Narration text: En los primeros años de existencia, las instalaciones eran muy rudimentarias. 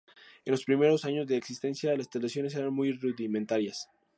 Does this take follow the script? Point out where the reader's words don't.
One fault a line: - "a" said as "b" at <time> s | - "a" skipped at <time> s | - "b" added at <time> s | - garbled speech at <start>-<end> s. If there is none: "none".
none